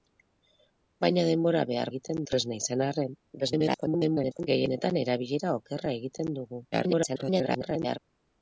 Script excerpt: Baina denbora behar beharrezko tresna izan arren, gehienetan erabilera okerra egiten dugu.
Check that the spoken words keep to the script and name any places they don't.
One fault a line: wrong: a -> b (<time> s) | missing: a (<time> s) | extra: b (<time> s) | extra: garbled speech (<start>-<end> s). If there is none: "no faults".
wrong: beharrezko -> egiten (1.9 s)
extra: garbled speech (3.4-4.5 s)
extra: garbled speech (6.7-8.0 s)